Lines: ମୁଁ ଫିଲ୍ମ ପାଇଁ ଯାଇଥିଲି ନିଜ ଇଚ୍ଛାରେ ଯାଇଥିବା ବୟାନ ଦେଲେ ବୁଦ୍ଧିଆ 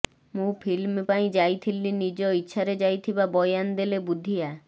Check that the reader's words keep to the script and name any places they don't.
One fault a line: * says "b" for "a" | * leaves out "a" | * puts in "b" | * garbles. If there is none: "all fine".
all fine